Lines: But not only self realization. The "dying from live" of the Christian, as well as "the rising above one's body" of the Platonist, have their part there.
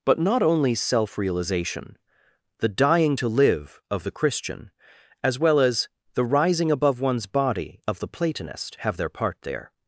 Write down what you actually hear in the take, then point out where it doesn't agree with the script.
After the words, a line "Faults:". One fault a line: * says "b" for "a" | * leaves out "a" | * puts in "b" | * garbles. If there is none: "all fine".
But not only self realization. The "dying to live" of the Christian, as well as "the rising above one's body" of the Platonist, have their part there.
Faults:
* says "to" for "from"